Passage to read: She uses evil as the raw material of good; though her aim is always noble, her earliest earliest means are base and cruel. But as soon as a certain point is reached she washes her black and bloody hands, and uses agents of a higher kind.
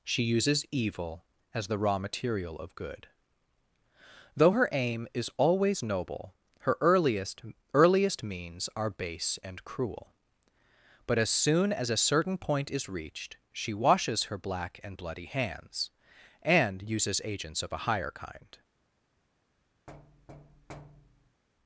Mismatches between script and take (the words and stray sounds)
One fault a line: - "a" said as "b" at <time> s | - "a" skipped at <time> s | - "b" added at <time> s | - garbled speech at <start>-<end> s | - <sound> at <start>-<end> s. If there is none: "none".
- thud at 19.9-21.4 s